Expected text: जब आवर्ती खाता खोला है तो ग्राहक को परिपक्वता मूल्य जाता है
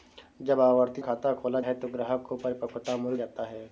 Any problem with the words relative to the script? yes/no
no